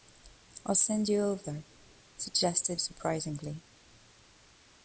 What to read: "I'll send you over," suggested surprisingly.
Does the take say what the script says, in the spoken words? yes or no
yes